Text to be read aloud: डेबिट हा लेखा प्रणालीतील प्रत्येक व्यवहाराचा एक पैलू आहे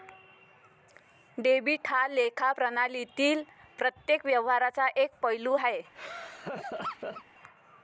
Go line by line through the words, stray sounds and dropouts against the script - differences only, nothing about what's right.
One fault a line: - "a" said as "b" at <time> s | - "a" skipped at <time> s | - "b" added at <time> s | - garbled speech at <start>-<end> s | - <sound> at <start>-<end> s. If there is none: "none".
- laugh at 5.9-7.2 s